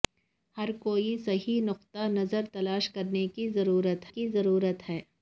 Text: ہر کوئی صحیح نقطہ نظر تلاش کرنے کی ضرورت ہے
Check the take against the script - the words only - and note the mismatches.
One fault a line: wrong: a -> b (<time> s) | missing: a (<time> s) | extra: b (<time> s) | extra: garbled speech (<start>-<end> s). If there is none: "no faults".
extra: کی ضرورت (4.1 s)